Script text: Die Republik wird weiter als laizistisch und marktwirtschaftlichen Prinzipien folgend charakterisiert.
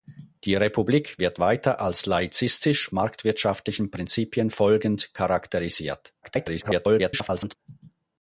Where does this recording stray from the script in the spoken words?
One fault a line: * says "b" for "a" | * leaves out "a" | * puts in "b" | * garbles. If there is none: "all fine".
* leaves out "und"
* garbles